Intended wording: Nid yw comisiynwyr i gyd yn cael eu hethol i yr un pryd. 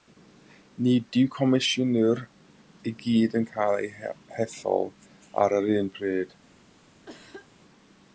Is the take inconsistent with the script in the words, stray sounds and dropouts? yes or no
yes